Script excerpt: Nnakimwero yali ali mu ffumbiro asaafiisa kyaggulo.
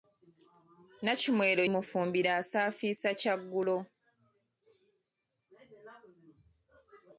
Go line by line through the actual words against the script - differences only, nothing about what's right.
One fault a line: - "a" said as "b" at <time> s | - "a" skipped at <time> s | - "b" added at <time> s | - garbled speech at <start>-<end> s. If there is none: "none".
- "yali ali" skipped at 1.6 s